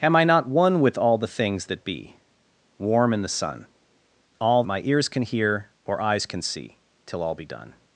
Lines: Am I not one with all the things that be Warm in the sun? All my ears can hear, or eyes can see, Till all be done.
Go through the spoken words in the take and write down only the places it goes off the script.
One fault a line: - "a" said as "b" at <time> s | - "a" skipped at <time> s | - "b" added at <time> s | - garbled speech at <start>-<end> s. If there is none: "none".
none